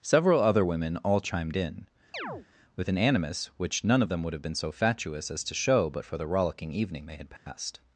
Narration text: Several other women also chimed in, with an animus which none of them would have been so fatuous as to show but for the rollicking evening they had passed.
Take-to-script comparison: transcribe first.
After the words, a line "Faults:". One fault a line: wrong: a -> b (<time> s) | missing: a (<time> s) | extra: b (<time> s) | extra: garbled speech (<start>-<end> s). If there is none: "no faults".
Several other women all chimed in, with an animus which none of them would have been so fatuous as to show but for the rollicking evening they had passed.
Faults:
wrong: also -> all (1.0 s)